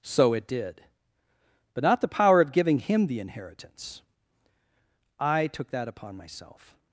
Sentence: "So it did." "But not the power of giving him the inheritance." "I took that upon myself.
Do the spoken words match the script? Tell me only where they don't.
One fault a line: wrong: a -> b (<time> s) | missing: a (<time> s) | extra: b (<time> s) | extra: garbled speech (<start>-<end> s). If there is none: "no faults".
no faults